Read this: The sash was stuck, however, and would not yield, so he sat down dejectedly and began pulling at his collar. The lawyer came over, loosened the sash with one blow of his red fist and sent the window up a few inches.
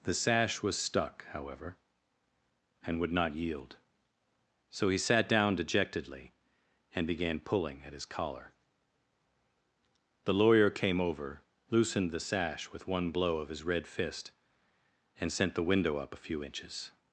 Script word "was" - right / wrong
right